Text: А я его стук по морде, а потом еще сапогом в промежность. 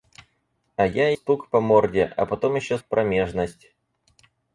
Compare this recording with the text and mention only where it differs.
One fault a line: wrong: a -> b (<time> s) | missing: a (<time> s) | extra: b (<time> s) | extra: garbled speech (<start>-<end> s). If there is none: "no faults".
missing: его (1.1 s)
missing: сапогом (2.8 s)